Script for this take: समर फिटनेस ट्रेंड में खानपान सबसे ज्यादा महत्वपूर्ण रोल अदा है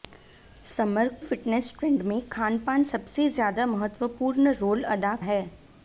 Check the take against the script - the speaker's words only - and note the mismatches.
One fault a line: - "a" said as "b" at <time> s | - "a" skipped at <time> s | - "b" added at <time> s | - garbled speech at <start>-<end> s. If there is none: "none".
none